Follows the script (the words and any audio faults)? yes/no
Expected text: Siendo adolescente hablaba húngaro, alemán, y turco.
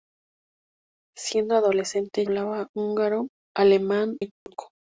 no